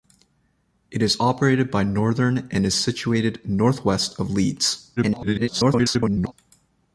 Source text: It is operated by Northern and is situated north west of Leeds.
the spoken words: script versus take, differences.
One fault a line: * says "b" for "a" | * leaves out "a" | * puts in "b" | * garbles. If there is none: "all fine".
* garbles